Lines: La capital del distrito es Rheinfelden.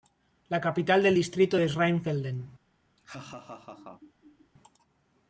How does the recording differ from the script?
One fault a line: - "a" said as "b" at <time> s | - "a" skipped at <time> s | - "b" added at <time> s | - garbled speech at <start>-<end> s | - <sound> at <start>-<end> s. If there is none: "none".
- laugh at 3.0-4.5 s